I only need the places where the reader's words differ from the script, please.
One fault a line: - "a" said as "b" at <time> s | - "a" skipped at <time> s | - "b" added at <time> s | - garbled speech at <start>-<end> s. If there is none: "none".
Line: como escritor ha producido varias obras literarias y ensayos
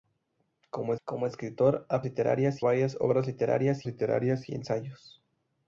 - "como" added at 1.1 s
- "producido" said as "literarias" at 2.0 s
- "literarias" added at 3.9 s